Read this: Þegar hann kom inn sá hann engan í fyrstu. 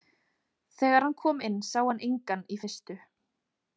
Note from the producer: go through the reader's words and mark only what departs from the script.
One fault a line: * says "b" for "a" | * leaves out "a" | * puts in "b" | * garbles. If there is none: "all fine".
all fine